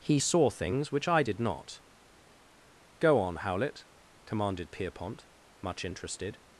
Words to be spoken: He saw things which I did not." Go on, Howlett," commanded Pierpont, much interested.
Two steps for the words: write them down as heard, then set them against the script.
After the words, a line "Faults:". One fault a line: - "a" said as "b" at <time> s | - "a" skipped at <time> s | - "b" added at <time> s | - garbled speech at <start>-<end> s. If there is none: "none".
He saw things which I did not." Go on, Howlett," commanded Pierpont, much interested.
Faults:
none